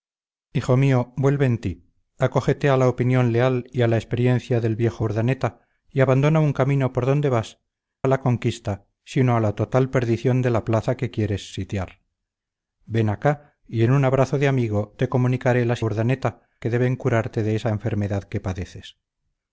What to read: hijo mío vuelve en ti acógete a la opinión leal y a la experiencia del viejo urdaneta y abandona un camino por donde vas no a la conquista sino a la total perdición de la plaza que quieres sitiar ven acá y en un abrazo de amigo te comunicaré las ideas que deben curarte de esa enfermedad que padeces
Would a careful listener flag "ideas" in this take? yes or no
yes